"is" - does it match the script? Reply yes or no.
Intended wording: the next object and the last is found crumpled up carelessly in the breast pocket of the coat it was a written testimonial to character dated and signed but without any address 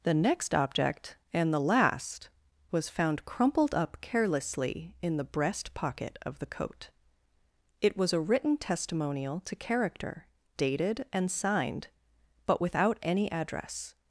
no